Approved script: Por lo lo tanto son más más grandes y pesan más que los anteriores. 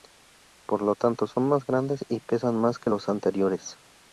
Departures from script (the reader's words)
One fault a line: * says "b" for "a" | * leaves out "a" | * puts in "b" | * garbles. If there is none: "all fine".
* leaves out "lo"
* leaves out "más"